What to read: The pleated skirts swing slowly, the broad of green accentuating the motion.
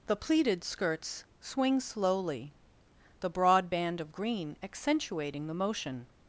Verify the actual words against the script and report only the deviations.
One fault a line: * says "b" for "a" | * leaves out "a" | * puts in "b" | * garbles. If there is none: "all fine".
* puts in "band"